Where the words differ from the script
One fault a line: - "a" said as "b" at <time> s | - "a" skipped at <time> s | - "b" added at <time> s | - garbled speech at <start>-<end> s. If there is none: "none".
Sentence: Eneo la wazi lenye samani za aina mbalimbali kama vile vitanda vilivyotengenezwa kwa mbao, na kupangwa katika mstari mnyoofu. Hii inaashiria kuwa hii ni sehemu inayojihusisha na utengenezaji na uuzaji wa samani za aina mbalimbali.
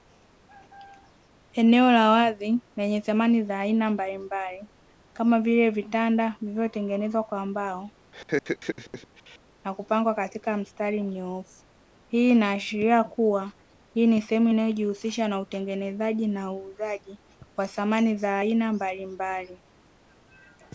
none